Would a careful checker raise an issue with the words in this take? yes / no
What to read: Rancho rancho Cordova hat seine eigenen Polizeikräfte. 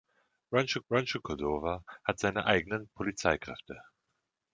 no